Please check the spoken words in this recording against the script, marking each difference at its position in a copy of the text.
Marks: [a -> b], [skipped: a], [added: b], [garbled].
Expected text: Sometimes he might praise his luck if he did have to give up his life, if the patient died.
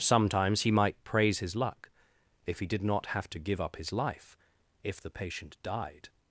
Sometimes he might praise his luck if he did [added: not] have to give up his life, if the patient died.